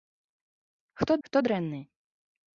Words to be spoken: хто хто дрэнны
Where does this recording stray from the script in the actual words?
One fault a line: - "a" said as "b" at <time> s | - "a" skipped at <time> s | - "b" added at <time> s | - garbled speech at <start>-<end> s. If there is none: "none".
none